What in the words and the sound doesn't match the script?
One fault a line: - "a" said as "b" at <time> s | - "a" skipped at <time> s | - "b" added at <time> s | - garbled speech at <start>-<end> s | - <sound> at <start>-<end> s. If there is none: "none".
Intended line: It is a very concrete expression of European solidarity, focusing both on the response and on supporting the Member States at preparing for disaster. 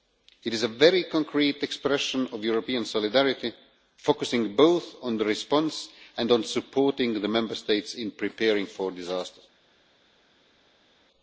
- "at" said as "in" at 7.9 s